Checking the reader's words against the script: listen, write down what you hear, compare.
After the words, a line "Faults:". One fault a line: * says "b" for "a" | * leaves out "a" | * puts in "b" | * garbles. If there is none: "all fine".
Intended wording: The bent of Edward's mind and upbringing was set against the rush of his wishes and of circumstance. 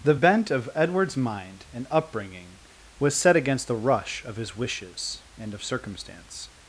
The bent of Edward's mind and upbringing was set against the rush of his wishes and of circumstance.
Faults:
all fine